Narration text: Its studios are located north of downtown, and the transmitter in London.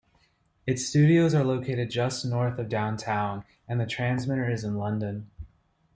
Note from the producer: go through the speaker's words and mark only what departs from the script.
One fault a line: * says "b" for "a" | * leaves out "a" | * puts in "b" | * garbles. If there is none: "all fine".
* puts in "just"
* puts in "is"